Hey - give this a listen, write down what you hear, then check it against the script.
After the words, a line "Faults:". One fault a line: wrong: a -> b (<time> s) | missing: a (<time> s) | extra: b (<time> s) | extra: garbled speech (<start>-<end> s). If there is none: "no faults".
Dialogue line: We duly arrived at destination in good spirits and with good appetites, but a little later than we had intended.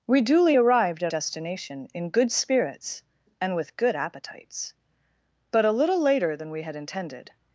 We duly arrived at destination in good spirits and with good appetites, but a little later than we had intended.
Faults:
no faults